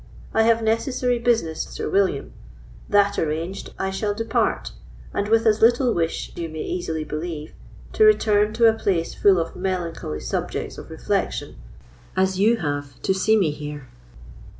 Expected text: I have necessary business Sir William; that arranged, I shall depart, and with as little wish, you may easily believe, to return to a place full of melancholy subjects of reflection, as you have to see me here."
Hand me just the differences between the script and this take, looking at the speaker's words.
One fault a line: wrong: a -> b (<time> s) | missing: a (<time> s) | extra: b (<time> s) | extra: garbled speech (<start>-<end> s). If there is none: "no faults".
no faults